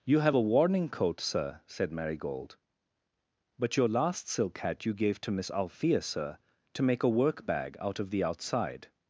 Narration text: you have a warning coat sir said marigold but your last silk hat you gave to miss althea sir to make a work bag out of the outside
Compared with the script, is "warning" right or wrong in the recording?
right